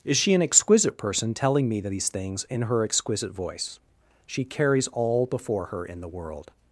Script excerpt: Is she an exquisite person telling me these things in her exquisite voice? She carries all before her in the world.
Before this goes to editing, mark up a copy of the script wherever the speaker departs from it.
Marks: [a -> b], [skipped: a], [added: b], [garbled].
Is she an exquisite person telling me these things in her exquisite voice? She carries all before her in the world.